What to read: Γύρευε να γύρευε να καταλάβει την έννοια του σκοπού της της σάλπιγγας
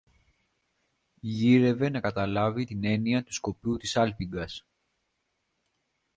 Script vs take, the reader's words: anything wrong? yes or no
yes